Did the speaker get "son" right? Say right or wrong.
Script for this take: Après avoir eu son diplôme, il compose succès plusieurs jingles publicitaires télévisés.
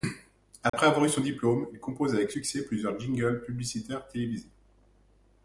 right